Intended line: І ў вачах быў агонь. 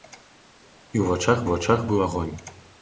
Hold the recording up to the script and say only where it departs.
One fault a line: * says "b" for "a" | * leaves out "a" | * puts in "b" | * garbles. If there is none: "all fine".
* puts in "вачах"